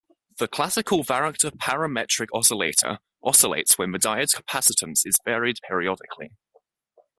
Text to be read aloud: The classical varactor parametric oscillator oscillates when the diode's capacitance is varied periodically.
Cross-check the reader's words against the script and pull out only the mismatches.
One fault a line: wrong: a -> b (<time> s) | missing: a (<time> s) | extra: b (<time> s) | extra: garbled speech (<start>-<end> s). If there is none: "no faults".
no faults